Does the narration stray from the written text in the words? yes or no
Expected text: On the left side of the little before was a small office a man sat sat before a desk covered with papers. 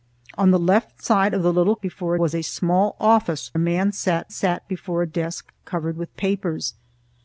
no